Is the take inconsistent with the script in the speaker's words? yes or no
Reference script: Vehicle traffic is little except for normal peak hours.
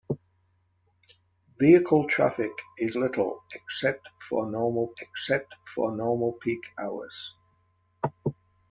yes